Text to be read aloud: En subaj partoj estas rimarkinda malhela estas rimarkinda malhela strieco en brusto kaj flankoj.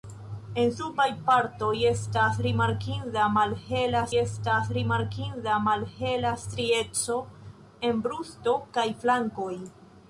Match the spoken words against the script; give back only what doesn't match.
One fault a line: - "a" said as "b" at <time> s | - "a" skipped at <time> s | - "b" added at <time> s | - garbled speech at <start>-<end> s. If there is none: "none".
none